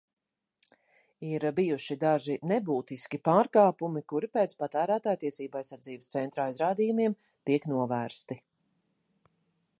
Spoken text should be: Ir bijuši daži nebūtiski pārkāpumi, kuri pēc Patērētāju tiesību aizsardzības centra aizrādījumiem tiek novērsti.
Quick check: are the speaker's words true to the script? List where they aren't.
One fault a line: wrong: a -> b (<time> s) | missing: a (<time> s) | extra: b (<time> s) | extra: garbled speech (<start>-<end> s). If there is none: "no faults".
no faults